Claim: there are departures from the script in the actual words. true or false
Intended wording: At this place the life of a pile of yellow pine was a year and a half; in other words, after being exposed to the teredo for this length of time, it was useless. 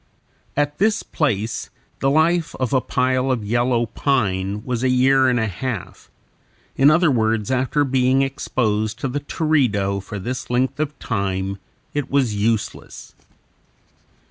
false